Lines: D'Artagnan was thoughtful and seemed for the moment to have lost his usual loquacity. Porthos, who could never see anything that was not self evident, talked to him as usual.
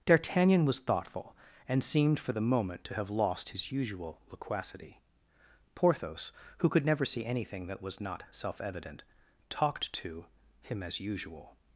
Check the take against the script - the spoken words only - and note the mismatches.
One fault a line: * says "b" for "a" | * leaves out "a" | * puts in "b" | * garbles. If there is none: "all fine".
all fine